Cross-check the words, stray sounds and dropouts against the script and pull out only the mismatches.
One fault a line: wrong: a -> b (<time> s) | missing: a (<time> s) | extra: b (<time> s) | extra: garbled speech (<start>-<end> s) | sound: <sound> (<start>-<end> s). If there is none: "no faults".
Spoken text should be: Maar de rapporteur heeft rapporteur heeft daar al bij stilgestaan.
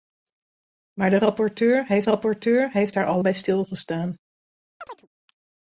sound: chirp (4.8-5.1 s)